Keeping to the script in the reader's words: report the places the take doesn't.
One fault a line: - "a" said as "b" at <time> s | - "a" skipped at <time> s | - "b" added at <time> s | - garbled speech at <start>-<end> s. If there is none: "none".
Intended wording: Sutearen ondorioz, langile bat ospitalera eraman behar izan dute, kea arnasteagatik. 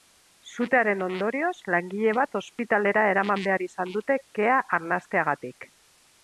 none